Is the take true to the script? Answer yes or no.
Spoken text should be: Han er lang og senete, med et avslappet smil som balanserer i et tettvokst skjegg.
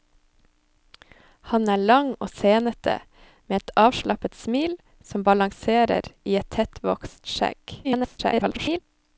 no